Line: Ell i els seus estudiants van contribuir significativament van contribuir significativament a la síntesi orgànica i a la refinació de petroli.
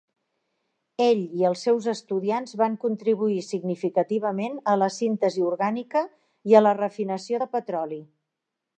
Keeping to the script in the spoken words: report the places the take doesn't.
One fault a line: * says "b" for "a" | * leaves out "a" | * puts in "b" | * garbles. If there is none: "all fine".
* leaves out "van contribuir significativament"